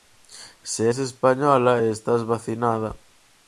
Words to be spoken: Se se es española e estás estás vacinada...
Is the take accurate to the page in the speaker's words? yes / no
no